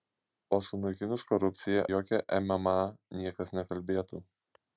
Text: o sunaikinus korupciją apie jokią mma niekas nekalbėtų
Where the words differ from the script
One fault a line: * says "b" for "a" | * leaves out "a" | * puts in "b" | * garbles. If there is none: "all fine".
* leaves out "apie"